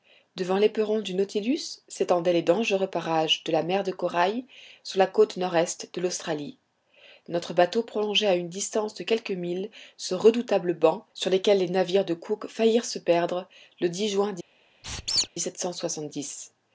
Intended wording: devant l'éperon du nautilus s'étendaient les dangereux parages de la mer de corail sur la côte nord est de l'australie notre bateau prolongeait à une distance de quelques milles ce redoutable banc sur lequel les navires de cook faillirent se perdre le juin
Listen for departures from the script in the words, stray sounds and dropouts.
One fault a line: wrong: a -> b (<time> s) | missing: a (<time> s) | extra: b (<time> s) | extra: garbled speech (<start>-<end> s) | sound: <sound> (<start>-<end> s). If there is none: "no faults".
sound: squeak (14.8-15.3 s)